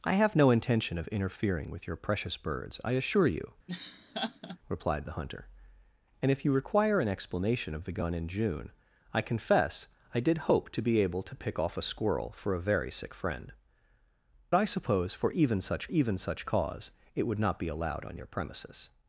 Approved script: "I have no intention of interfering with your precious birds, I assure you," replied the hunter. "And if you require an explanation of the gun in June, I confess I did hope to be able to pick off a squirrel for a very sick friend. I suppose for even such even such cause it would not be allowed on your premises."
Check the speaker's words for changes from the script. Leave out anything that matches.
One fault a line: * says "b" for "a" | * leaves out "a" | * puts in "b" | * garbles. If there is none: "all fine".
all fine